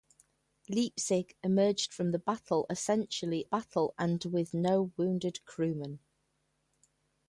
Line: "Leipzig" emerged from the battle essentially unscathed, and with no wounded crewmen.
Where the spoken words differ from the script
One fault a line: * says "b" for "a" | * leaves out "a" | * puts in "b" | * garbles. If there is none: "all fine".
* says "battle" for "unscathed"